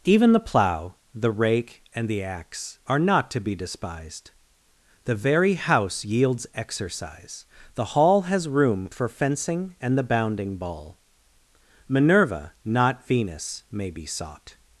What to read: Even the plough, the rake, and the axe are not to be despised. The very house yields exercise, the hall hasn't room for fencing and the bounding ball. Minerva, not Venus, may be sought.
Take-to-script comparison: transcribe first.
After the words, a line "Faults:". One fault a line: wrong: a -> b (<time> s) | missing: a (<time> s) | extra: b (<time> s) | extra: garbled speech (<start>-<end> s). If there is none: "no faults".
Even the plough, the rake, and the axe are not to be despised. The very house yields exercise, the hall has room for fencing and the bounding ball. Minerva, not Venus, may be sought.
Faults:
wrong: hasn't -> has (8.2 s)